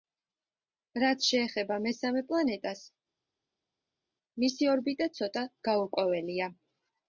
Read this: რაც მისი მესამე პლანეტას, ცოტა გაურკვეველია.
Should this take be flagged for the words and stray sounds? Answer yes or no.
yes